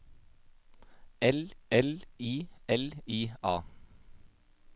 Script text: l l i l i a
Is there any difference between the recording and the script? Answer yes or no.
no